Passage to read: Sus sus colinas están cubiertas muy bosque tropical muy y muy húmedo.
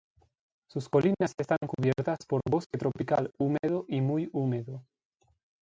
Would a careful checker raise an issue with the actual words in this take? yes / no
yes